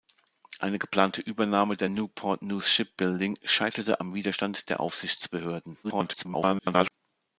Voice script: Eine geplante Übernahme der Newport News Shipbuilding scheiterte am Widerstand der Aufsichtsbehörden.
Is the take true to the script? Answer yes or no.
no